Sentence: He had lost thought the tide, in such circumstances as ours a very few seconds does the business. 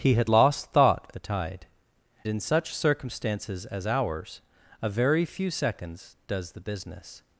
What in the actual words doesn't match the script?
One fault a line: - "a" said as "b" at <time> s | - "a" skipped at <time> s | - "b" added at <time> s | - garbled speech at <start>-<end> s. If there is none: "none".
none